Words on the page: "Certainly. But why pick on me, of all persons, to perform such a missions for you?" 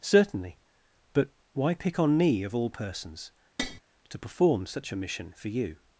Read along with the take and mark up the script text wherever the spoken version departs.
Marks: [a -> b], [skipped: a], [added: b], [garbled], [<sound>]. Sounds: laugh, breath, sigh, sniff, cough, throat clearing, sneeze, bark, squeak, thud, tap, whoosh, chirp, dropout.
"Certainly. But why pick on me, of all persons, [tap] to perform such a [missions -> mission] for you?"